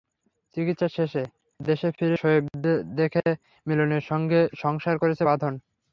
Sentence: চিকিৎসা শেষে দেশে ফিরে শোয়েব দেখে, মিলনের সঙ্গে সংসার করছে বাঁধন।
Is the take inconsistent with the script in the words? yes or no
no